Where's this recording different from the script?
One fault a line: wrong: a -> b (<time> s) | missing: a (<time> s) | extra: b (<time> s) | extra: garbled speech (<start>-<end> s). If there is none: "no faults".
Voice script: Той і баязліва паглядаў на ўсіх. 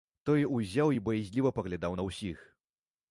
extra: узяў (0.6 s)